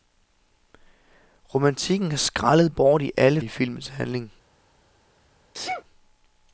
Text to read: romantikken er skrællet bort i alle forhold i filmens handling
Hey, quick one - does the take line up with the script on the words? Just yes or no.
no